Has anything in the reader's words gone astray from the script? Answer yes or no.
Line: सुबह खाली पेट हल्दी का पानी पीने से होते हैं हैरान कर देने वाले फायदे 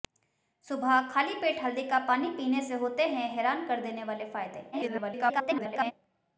yes